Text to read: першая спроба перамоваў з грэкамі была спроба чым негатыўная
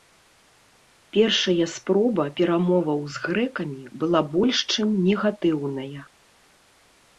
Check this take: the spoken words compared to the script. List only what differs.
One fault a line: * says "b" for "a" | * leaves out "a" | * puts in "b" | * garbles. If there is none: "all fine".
* says "больш" for "спроба"